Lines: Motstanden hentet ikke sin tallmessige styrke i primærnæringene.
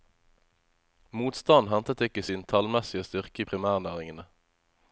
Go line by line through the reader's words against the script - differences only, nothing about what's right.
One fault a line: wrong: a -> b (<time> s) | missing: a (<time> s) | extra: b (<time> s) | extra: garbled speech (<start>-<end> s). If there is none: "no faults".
no faults